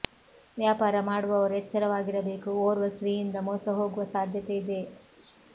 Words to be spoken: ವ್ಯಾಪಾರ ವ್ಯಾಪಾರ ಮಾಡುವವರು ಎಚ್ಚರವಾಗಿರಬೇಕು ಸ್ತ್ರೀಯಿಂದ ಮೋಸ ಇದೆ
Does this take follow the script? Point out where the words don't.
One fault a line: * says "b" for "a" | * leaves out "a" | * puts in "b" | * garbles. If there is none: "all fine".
* leaves out "ವ್ಯಾಪಾರ"
* puts in "ಓರ್ವ"
* puts in "ಹೋಗುವ ಸಾಧ್ಯತೆ"